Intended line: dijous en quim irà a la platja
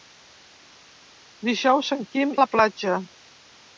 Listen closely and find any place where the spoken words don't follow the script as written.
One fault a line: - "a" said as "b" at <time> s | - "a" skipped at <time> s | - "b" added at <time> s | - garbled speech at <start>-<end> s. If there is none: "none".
- "irà" skipped at 2.3 s